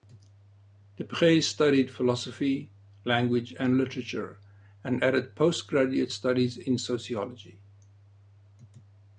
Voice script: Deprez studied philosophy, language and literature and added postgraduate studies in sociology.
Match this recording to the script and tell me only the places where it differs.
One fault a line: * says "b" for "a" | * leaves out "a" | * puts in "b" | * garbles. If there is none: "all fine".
all fine